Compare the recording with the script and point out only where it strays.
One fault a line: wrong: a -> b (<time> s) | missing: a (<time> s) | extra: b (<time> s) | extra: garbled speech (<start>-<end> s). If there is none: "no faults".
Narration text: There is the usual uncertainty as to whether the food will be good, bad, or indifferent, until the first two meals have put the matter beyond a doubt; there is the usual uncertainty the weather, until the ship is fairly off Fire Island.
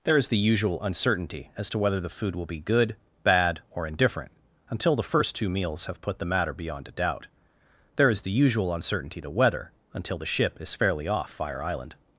no faults